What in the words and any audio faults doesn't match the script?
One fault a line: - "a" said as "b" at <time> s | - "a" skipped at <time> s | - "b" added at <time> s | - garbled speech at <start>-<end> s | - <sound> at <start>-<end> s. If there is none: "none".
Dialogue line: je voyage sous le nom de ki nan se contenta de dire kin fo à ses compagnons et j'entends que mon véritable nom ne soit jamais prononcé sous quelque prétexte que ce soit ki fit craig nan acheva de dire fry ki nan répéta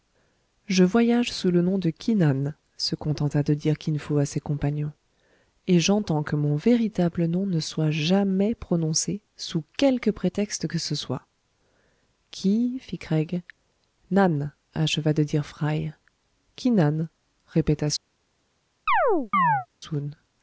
- chirp at 18.9-19.7 s